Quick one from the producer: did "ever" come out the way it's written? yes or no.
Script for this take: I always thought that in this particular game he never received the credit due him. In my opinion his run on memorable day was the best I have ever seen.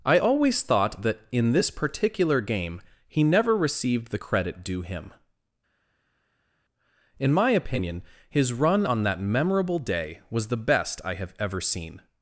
yes